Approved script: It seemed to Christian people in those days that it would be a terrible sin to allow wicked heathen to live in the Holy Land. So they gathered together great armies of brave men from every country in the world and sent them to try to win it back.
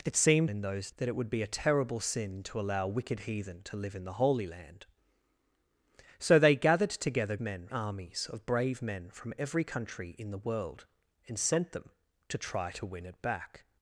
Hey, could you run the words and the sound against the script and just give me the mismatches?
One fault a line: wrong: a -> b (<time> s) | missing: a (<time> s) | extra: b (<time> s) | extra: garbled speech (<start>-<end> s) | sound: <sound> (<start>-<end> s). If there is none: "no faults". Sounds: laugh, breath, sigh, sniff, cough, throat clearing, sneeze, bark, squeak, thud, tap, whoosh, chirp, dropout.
missing: to Christian people (0.5 s)
missing: days (0.9 s)
wrong: great -> men (7.4 s)